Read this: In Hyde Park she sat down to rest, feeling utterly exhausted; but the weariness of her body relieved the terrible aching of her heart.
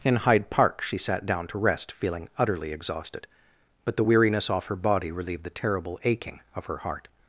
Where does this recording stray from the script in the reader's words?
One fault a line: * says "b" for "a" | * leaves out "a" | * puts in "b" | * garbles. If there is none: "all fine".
* says "off" for "of"